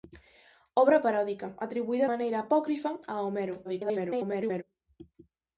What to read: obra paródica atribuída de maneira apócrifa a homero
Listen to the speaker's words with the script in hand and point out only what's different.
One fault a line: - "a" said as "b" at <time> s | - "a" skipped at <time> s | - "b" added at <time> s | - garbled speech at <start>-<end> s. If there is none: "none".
- "de" skipped at 2.1 s
- garbled speech at 3.6-4.6 s